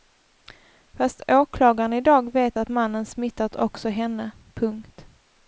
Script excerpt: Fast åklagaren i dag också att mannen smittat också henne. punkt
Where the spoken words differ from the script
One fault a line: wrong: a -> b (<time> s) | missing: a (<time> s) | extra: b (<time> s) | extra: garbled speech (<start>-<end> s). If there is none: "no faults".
wrong: också -> vet (2.3 s)